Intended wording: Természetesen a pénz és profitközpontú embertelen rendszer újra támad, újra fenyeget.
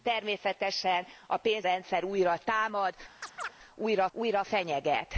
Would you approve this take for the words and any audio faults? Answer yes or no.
no